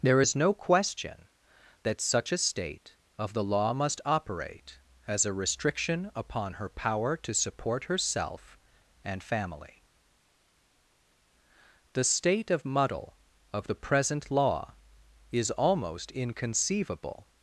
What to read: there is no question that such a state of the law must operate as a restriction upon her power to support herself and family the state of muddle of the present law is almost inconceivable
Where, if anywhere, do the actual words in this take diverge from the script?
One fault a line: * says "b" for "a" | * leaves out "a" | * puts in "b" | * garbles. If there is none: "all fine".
all fine